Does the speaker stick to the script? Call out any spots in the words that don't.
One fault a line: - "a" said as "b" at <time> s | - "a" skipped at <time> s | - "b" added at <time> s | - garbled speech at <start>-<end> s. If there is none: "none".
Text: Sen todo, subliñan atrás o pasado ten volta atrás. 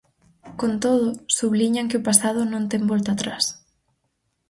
- "Sen" said as "Con" at 0.6 s
- "atrás" said as "que" at 1.9 s
- "non" added at 2.5 s